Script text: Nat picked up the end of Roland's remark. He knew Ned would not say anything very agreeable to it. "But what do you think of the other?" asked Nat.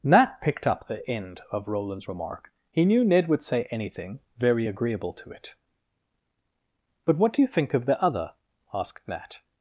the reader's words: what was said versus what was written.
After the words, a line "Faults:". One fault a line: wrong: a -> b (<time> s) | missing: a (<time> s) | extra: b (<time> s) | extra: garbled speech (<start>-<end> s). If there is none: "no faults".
Nat picked up the end of Roland's remark. He knew Ned would say anything very agreeable to it. "But what do you think of the other?" asked Nat.
Faults:
missing: not (3.4 s)